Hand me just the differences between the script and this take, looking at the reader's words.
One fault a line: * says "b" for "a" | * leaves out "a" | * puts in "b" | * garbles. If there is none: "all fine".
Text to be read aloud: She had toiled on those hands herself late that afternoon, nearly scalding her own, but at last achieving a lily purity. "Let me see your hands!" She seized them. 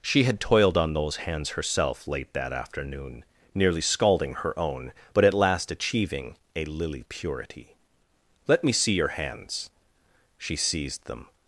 all fine